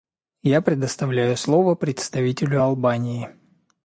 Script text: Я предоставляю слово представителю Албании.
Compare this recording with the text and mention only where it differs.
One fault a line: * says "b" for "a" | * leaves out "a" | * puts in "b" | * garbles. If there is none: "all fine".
all fine